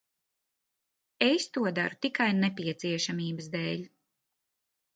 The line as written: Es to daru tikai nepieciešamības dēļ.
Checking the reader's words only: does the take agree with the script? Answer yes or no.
yes